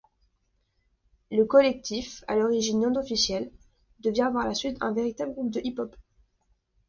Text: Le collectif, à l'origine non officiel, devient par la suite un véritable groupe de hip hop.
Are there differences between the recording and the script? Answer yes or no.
no